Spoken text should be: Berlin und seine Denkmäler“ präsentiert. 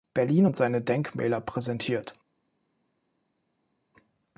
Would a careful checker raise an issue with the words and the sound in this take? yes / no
no